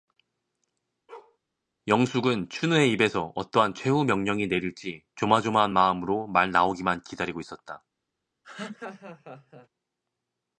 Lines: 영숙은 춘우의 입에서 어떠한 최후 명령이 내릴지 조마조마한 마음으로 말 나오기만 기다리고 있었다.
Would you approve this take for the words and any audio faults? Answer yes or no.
no